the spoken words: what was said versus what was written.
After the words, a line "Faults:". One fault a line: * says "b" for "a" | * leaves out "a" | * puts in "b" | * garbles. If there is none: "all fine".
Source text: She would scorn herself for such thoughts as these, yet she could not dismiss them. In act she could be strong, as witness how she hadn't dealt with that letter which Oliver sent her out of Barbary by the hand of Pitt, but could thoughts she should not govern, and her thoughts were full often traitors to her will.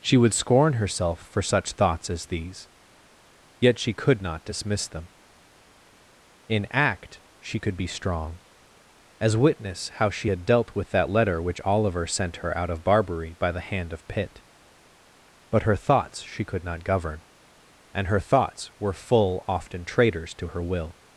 She would scorn herself for such thoughts as these, yet she could not dismiss them. In act she could be strong, as witness how she had dealt with that letter which Oliver sent her out of Barbary by the hand of Pitt, but her thoughts she could not govern, and her thoughts were full often traitors to her will.
Faults:
* says "had" for "hadn't"
* says "her" for "could"
* says "could" for "should"